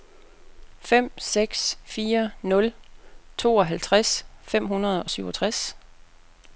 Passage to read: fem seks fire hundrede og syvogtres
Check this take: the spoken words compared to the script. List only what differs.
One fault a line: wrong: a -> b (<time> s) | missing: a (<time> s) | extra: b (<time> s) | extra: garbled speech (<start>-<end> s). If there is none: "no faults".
extra: nul tooghalvtreds fem (2.4 s)